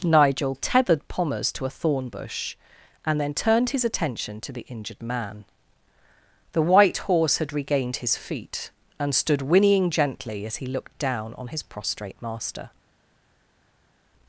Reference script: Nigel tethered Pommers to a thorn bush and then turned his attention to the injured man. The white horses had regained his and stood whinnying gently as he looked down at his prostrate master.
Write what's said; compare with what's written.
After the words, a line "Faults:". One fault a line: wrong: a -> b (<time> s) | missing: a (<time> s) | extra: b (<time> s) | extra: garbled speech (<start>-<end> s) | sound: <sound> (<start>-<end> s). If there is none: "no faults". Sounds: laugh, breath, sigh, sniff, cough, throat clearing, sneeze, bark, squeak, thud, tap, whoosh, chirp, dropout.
Nigel tethered Pommers to a thorn bush and then turned his attention to the injured man. The white horse had regained his feet and stood whinnying gently as he looked down on his prostrate master.
Faults:
wrong: horses -> horse (7.0 s)
extra: feet (8.2 s)
wrong: at -> on (11.3 s)